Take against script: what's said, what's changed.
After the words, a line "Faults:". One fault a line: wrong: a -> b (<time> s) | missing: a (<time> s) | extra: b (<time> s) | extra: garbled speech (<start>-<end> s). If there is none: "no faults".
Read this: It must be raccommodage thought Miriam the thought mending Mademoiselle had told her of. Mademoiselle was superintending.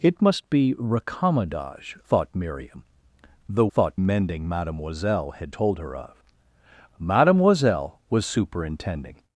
It must be raccommodage thought Miriam the thought mending Mademoiselle had told her of. Mademoiselle was superintending.
Faults:
no faults